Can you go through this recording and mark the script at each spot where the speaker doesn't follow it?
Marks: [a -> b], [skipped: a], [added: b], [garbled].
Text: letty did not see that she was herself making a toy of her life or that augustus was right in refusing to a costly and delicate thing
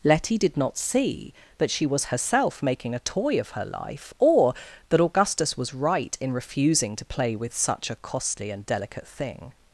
letty did not see that she was herself making a toy of her life or that augustus was right in refusing to [added: play with such] a costly and delicate thing